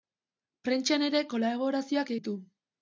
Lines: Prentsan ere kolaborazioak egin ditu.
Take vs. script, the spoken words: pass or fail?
fail